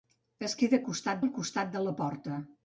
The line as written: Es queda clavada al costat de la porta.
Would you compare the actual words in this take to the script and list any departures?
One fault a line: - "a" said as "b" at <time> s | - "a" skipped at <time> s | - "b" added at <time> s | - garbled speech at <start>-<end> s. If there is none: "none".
- "clavada" said as "costat" at 0.9 s